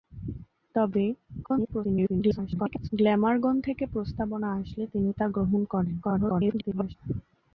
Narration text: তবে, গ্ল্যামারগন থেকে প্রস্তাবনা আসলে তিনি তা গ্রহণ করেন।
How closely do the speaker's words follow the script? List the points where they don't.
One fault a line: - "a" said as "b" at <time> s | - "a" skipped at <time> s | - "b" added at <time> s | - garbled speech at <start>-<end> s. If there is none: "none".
- garbled speech at 1.4-2.9 s
- garbled speech at 6.0-7.0 s